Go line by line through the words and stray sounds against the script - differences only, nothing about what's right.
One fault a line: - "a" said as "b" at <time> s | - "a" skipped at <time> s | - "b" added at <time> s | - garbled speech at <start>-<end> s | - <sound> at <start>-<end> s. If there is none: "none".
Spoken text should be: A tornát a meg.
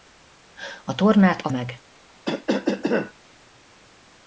- cough at 2.2-3.1 s